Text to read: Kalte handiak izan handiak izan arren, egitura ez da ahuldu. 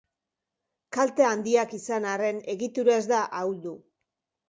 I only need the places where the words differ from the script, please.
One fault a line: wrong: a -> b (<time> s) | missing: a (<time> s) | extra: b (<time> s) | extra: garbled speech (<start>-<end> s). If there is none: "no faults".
missing: handiak izan (2.1 s)